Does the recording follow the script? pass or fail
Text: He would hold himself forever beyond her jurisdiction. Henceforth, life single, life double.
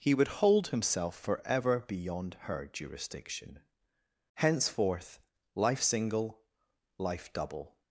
pass